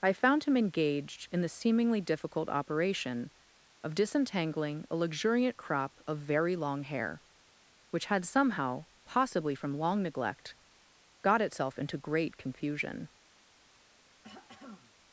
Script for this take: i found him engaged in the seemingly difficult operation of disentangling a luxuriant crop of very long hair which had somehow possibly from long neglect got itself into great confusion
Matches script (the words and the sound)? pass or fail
fail